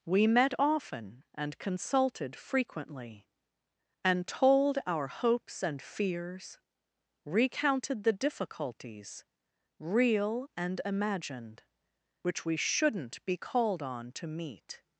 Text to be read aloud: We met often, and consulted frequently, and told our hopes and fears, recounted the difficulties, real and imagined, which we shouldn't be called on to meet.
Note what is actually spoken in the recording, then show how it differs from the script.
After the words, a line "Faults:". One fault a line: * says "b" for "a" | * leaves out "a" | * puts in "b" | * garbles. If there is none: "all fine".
We met often, and consulted frequently, and told our hopes and fears, recounted the difficulties, real and imagined, which we shouldn't be called on to meet.
Faults:
all fine